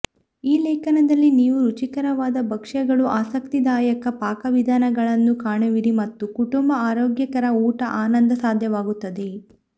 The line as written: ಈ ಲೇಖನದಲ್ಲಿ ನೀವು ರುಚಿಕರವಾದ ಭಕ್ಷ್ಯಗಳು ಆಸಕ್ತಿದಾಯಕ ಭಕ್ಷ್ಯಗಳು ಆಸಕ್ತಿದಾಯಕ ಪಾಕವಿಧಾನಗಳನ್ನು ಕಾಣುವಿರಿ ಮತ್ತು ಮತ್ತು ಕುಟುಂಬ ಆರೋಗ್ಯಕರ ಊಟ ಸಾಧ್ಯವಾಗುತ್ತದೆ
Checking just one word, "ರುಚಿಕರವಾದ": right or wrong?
right